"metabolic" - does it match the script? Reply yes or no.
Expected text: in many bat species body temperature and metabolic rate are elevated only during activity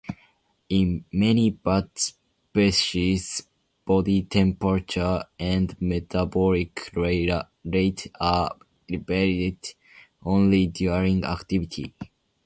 yes